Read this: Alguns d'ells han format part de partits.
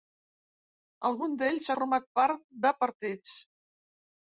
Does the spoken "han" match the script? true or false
false